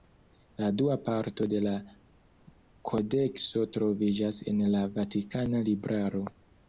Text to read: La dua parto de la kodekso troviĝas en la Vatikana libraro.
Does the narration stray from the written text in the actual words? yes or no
no